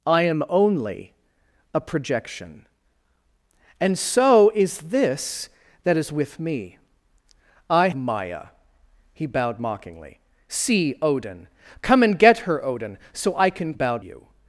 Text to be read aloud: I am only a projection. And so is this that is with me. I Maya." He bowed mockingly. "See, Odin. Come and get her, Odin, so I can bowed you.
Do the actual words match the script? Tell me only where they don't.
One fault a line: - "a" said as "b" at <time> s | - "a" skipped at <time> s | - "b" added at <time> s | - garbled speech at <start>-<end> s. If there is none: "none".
none